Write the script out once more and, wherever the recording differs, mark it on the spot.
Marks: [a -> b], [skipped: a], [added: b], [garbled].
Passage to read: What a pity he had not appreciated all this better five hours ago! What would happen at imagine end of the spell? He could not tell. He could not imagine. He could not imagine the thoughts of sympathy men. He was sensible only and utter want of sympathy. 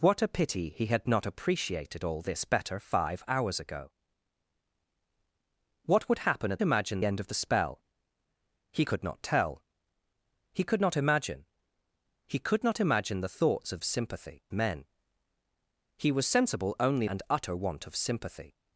What a pity he had not appreciated all this better five hours ago! What would happen at imagine end of the spell? He could not tell. He could not imagine. He could not imagine the thoughts of sympathy men. He was sensible only and utter want of sympathy.